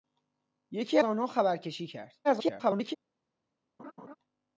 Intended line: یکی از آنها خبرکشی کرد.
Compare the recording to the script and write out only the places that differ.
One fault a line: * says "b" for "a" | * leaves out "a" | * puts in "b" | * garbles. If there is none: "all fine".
* leaves out "از"
* garbles